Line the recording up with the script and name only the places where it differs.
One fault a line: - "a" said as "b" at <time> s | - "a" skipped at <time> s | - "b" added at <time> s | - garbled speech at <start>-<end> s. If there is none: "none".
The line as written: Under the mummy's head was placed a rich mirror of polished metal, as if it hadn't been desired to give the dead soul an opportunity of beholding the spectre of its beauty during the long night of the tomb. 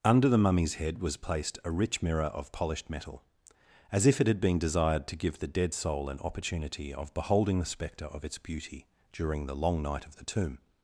- "hadn't" said as "had" at 4.2 s